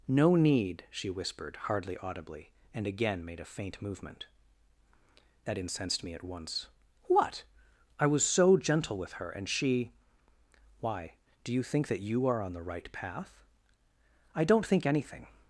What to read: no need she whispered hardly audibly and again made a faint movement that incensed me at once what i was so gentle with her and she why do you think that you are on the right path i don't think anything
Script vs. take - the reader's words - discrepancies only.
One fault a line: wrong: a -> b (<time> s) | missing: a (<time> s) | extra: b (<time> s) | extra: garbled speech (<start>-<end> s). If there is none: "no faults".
no faults